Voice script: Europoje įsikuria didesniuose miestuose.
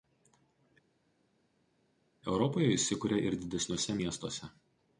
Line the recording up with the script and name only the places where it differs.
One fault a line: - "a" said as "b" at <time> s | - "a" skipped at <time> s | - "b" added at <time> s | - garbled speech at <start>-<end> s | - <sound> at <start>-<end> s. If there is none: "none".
- "ir" added at 3.3 s